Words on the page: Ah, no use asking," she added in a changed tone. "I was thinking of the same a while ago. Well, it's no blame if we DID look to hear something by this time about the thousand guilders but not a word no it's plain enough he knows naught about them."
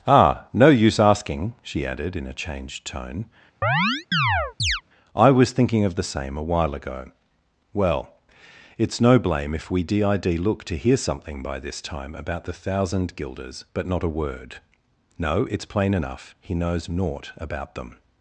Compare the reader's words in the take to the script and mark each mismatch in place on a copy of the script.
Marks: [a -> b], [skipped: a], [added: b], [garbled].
Ah, no use asking," she added in a changed tone. "I was thinking of the same a while ago. Well, it's no blame if we DID look to hear something by this time about the thousand guilders but not a word no it's plain enough he knows naught about them."